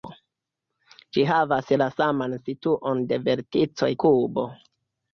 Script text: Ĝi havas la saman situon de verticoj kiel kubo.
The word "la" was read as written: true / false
true